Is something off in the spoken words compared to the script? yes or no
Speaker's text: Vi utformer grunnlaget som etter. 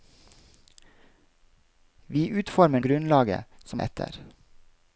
no